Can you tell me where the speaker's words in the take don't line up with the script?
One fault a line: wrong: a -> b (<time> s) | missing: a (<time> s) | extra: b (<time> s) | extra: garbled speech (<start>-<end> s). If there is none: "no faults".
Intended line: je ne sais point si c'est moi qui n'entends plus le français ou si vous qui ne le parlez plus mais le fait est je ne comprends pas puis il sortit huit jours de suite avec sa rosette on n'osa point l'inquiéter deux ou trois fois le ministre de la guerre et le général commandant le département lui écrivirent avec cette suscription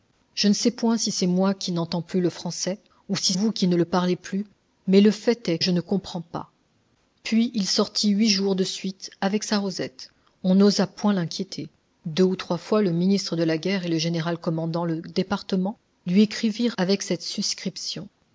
no faults